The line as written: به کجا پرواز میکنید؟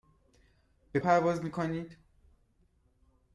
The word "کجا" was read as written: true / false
false